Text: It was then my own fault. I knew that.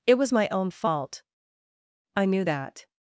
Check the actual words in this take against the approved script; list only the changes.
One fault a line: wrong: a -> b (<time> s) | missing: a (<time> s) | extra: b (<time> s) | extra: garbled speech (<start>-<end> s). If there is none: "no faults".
missing: then (0.3 s)